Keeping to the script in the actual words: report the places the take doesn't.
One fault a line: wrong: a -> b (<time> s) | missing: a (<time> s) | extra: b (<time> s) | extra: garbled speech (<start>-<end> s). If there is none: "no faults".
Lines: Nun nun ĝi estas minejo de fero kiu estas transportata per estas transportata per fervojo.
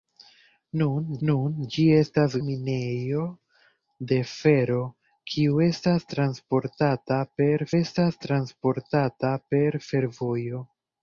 no faults